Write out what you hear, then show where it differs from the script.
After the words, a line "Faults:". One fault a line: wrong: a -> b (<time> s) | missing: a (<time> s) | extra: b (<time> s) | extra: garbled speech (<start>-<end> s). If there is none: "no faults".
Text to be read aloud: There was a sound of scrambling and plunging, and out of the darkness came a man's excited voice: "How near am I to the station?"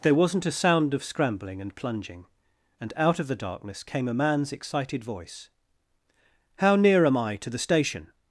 There wasn't a sound of scrambling and plunging, and out of the darkness came a man's excited voice: "How near am I to the station?"
Faults:
wrong: was -> wasn't (0.1 s)